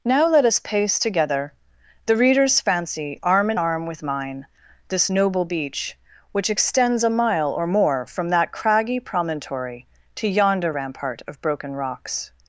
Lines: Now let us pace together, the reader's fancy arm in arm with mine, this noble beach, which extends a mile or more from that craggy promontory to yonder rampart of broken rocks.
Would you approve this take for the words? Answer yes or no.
yes